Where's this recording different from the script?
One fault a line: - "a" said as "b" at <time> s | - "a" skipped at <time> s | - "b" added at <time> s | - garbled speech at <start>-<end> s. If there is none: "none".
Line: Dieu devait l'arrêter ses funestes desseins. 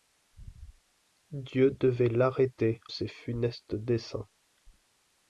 none